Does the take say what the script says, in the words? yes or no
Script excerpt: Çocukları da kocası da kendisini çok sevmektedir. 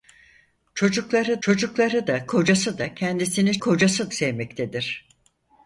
no